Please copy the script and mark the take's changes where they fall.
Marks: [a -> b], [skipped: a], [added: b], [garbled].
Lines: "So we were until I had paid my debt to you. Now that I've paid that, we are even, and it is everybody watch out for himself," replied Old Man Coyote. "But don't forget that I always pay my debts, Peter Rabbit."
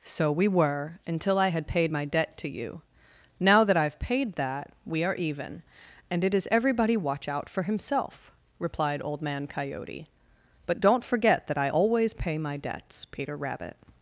"So we were until I had paid my debt to you. Now that I've paid that, we are even, and it is everybody watch out for himself," replied Old Man Coyote. "But don't forget that I always pay my debts, Peter Rabbit."